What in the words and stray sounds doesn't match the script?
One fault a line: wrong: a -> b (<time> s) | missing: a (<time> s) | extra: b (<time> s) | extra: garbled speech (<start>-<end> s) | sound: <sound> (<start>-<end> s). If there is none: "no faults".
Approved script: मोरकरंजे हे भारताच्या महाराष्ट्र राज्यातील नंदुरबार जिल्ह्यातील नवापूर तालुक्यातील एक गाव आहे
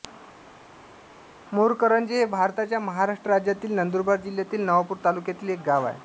no faults